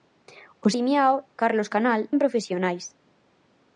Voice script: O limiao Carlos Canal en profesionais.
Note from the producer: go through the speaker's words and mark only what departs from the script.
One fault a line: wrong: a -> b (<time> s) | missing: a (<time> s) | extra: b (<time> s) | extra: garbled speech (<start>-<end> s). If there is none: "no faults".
no faults